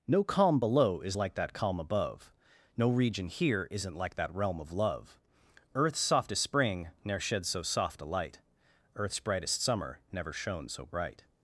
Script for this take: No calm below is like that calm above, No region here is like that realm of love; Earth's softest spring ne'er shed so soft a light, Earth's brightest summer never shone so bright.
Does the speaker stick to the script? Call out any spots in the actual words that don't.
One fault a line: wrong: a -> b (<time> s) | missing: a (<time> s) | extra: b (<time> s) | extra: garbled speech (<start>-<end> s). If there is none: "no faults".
wrong: is -> isn't (3.7 s)